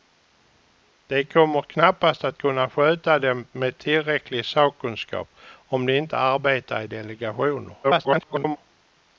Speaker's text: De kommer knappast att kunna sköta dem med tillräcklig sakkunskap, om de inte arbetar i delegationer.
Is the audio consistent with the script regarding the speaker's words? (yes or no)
no